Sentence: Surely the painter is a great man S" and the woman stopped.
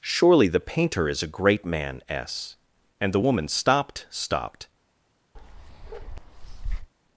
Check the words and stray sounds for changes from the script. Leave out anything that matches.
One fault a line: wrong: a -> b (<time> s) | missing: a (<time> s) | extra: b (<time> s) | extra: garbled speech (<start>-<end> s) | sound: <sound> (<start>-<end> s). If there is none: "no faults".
extra: stopped (4.1 s)
sound: bark (5.4-6.9 s)